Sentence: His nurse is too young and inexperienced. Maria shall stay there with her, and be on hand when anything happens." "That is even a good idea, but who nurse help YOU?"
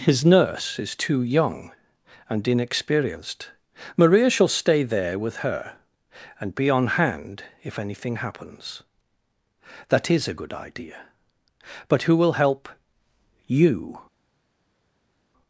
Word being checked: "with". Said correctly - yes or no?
yes